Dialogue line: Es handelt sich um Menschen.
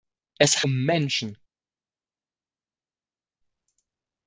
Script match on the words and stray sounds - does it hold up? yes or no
no